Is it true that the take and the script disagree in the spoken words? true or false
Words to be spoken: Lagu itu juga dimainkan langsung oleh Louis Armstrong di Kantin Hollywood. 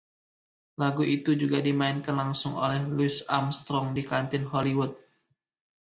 false